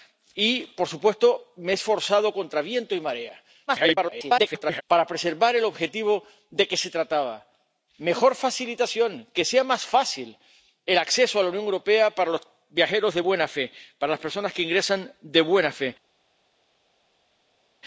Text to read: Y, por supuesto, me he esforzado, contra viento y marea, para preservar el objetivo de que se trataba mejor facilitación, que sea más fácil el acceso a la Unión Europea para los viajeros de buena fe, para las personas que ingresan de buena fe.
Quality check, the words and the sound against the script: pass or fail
fail